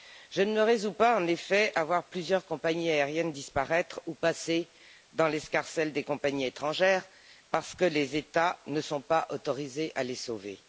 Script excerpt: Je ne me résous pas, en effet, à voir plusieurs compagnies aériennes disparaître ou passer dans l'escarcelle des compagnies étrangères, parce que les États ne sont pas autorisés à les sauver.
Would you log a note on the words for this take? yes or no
no